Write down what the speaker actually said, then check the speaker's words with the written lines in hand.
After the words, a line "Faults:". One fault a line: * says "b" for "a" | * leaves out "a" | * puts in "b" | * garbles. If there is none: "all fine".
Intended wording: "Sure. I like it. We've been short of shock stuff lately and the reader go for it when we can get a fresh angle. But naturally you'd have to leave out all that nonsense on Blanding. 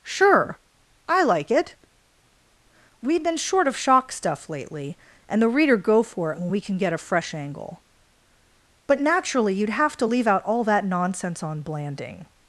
"Sure. I like it. We've been short of shock stuff lately and the reader go for it when we can get a fresh angle. But naturally you'd have to leave out all that nonsense on Blanding.
Faults:
all fine